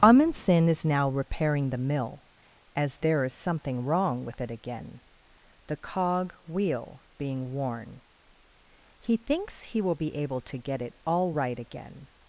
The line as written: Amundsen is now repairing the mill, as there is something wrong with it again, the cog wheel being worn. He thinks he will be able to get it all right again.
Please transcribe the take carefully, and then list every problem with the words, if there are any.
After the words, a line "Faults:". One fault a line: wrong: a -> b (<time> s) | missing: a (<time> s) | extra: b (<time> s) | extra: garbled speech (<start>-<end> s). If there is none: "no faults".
Amundsen is now repairing the mill, as there is something wrong with it again, the cog wheel being worn. He thinks he will be able to get it all right again.
Faults:
no faults